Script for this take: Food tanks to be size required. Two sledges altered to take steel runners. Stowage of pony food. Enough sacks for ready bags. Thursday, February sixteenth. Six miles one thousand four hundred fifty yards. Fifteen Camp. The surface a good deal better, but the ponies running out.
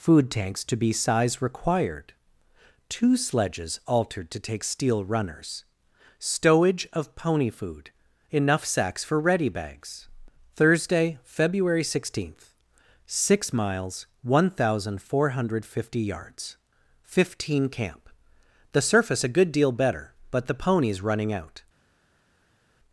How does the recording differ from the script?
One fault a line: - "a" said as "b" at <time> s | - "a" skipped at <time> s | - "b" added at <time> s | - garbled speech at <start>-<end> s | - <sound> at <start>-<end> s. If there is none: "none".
none